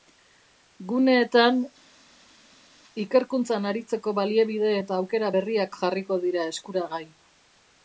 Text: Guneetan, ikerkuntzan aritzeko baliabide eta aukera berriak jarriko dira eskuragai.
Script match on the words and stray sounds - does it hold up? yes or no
yes